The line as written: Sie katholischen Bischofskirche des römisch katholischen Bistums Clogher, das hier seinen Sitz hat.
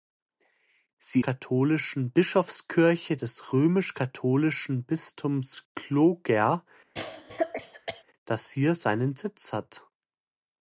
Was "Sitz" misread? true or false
false